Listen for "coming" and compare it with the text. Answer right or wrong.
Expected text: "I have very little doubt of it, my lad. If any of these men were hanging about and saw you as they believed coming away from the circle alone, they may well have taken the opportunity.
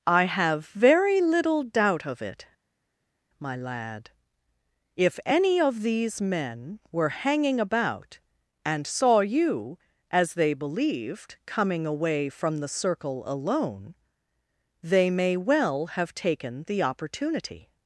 right